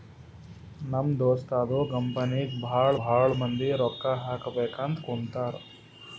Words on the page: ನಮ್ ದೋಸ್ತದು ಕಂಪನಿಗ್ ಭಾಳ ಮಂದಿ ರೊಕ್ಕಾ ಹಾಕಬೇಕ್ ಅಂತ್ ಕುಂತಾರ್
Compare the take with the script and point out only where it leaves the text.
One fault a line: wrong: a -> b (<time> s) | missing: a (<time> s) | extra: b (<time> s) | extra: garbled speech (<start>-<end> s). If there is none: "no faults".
extra: ಭಾಳ (3.0 s)